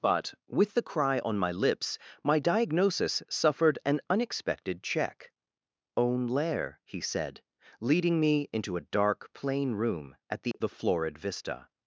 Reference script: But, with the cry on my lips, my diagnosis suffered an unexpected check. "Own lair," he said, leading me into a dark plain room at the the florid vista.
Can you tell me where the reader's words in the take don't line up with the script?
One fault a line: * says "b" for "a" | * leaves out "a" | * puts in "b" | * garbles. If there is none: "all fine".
all fine